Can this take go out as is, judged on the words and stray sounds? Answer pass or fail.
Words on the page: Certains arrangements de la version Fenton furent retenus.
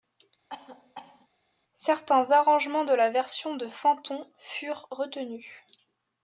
fail